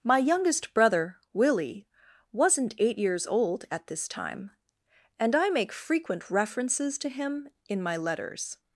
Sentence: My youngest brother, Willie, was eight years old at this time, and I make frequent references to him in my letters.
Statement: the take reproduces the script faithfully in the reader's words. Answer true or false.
false